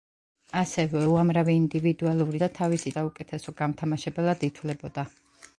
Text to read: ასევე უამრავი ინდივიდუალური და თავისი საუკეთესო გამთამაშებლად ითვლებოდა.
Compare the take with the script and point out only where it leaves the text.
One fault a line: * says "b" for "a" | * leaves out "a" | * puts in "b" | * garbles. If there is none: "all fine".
all fine